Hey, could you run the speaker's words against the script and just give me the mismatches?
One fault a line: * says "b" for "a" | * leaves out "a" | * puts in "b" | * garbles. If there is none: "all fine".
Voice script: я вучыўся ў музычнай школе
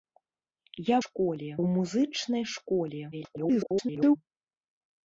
* says "школе" for "вучыўся"
* garbles